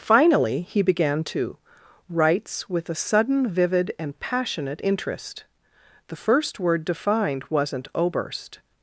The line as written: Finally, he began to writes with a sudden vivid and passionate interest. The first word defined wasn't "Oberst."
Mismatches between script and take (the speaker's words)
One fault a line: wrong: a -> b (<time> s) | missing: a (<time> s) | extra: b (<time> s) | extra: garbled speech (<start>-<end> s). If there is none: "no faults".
no faults